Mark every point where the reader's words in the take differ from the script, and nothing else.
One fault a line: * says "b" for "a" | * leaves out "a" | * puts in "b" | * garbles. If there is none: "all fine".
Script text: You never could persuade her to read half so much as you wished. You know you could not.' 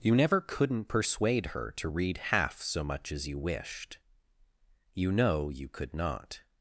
* says "couldn't" for "could"